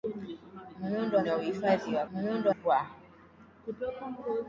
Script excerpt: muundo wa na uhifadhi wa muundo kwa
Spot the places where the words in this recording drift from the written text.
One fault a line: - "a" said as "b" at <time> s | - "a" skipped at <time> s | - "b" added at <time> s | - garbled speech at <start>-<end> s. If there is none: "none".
none